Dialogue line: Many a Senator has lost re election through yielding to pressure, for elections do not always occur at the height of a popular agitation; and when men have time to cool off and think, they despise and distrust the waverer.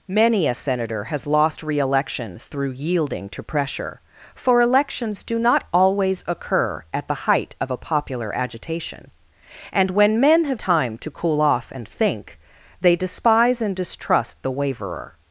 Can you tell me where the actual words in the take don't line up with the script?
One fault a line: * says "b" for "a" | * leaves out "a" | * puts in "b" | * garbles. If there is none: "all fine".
all fine